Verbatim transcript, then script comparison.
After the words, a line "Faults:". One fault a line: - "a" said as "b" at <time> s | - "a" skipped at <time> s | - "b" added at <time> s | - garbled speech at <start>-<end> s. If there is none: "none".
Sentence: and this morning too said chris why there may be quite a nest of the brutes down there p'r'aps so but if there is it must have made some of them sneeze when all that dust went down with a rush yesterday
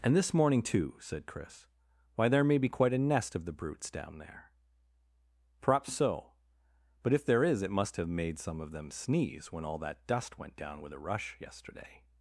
and this morning too said chris why there may be quite a nest of the brutes down there p'r'aps so but if there is it must have made some of them sneeze when all that dust went down with a rush yesterday
Faults:
none